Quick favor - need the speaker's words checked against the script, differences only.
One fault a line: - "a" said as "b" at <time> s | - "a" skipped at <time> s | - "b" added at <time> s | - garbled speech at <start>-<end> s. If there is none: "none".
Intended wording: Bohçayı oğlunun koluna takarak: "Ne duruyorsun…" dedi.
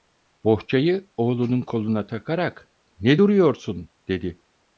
none